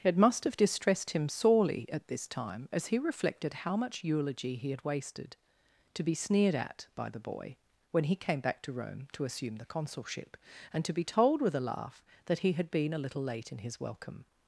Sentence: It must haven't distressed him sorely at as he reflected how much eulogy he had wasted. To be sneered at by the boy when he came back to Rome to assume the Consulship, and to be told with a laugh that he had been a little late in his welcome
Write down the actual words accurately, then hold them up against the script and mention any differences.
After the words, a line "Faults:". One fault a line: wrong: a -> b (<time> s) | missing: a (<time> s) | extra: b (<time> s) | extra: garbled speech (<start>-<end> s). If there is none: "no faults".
It must have distressed him sorely at this time as he reflected how much eulogy he had wasted. To be sneered at by the boy when he came back to Rome to assume the Consulship, and to be told with a laugh that he had been a little late in his welcome
Faults:
wrong: haven't -> have (0.5 s)
extra: this time (2.1 s)